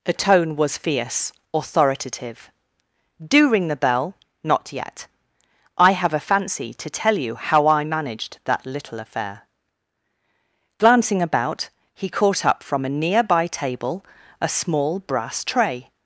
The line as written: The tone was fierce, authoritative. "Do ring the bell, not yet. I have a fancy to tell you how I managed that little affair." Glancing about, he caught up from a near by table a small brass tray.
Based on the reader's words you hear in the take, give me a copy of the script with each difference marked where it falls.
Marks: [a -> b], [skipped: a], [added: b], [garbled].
The tone was fierce, authoritative. "Do ring the bell, not yet. I have a fancy to tell you how I managed that little affair." Glancing about, he caught up from a near by table a small brass tray.